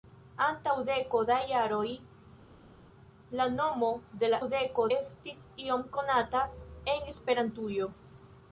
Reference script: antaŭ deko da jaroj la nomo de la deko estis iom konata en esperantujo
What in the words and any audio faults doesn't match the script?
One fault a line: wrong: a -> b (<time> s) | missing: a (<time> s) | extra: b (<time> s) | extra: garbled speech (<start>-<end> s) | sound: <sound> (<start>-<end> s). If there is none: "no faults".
no faults